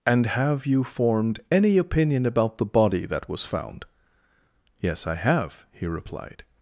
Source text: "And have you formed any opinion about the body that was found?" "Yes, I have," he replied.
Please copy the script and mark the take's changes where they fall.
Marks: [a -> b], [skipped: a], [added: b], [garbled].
"And have you formed any opinion about the body that was found?" "Yes, I have," he replied.